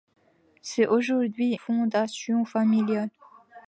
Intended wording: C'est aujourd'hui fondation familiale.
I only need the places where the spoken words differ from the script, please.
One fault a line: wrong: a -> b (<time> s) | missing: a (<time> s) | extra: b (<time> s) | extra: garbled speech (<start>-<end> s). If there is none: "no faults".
no faults